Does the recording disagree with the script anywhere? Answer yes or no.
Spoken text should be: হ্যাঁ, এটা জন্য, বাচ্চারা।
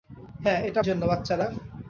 no